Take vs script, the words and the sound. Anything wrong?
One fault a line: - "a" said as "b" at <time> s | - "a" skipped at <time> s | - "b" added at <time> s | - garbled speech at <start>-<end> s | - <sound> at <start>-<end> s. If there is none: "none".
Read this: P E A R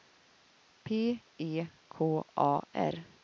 - "K" added at 1.9 s